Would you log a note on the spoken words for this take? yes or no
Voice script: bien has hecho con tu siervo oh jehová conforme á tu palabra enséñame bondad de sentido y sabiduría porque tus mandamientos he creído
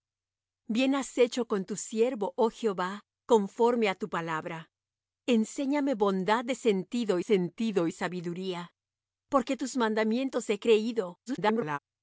yes